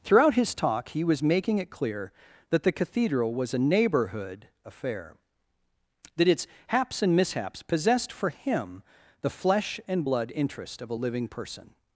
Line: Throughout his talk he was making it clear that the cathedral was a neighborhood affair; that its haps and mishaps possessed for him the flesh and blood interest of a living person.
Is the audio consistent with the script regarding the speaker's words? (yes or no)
yes